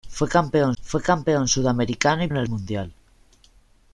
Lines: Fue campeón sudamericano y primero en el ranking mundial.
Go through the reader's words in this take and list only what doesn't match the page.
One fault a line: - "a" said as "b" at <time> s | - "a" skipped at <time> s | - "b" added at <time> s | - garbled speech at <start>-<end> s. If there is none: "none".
- "fue campeón" added at 0.8 s
- "primero" skipped at 2.3 s
- "ranking" skipped at 2.5 s